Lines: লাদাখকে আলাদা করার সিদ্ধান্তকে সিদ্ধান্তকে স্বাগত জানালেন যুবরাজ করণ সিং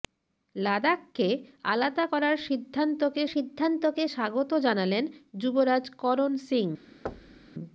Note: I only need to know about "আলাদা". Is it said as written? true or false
true